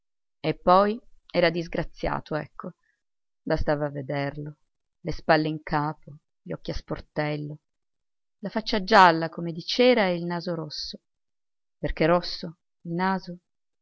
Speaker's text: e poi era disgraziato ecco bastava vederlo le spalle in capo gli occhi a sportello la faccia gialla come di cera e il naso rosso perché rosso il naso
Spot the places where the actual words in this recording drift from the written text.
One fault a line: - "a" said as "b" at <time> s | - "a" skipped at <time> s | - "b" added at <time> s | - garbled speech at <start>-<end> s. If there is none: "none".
none